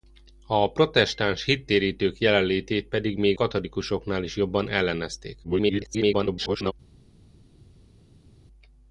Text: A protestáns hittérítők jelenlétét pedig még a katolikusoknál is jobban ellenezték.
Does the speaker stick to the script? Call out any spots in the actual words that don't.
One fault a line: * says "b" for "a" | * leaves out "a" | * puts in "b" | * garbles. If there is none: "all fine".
* leaves out "a"
* garbles